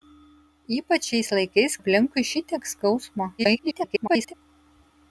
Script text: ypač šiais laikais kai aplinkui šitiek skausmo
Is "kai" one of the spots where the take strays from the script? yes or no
yes